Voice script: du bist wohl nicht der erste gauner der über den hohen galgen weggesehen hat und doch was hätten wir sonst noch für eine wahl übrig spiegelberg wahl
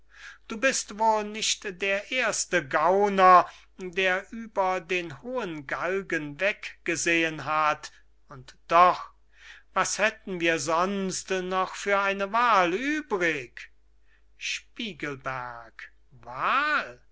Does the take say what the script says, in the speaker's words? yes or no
yes